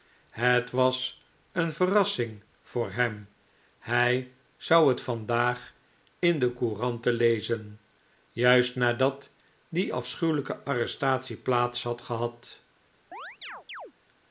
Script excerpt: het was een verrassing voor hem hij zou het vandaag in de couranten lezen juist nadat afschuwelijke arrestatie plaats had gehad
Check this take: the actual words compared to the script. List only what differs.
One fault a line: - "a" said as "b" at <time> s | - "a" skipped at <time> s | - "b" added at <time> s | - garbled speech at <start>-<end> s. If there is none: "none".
- "die" added at 9.7 s